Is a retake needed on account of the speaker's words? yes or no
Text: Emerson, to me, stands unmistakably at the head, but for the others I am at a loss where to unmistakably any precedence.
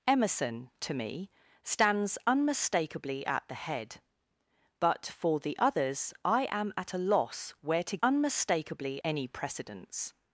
no